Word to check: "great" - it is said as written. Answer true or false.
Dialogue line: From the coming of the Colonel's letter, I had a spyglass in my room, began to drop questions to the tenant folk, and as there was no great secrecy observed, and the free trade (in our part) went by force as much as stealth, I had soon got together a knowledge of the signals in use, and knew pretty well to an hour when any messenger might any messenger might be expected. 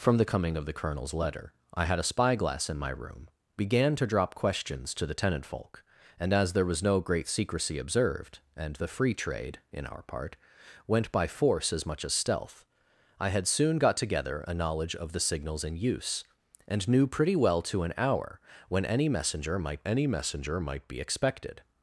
true